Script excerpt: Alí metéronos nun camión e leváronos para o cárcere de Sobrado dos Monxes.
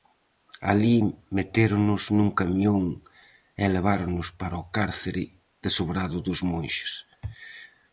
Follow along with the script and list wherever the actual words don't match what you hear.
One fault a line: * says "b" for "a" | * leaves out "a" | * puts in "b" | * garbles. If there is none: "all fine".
all fine